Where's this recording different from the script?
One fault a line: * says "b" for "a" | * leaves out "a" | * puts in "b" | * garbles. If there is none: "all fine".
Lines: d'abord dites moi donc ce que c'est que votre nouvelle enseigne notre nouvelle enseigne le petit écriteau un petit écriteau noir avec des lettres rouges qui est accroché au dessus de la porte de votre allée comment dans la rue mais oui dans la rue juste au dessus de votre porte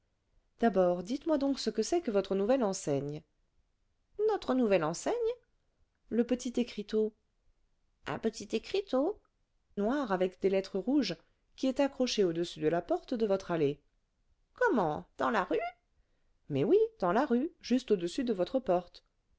all fine